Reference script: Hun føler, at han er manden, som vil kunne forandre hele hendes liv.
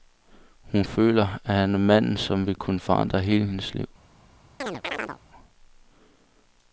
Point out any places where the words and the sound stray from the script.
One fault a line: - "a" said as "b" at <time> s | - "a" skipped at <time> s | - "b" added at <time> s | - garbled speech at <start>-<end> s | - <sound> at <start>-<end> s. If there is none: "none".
- chirp at 4.6-5.2 s